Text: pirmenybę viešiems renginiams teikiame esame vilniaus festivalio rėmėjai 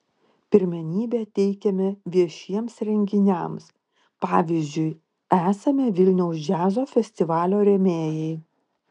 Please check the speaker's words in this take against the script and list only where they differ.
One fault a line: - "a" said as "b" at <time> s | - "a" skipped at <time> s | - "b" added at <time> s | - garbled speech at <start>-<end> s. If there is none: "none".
- "teikiame" added at 1.4 s
- "teikiame" said as "pavyzdžiui" at 4.3 s
- "džiazo" added at 6.5 s